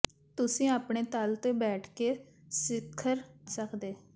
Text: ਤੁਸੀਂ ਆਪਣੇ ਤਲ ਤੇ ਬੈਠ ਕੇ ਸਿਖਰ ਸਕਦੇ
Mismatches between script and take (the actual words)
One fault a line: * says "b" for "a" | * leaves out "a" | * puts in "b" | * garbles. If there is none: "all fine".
all fine